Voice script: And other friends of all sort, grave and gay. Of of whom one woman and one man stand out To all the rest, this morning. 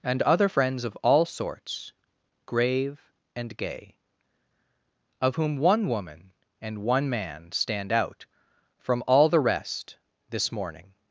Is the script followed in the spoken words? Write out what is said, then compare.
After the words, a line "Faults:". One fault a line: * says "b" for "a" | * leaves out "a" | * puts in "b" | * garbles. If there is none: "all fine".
And other friends of all sorts, grave and gay. Of whom one woman and one man stand out From all the rest, this morning.
Faults:
* says "sorts" for "sort"
* leaves out "of"
* says "From" for "To"